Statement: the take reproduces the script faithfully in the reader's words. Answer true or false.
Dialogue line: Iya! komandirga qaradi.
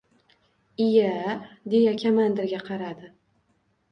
false